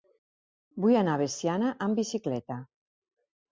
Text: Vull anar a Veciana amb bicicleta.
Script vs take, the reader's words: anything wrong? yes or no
no